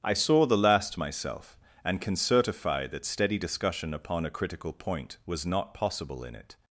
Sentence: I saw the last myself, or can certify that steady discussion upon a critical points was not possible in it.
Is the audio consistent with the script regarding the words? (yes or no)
no